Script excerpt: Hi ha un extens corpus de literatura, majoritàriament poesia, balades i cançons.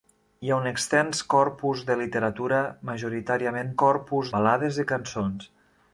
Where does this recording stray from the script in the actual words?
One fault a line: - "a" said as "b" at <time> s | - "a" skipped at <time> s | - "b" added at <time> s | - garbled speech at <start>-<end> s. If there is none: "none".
- "poesia" said as "corpus" at 3.8 s